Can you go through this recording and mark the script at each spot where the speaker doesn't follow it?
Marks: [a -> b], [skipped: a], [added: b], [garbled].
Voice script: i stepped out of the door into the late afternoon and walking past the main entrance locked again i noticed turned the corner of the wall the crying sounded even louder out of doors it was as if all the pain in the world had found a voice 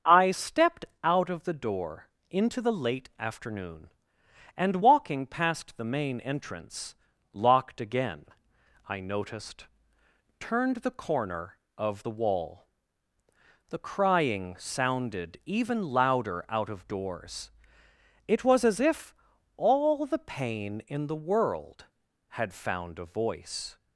i stepped out of the door into the late afternoon and walking past the main entrance locked again i noticed turned the corner of the wall the crying sounded even louder out of doors it was as if all the pain in the world had found a voice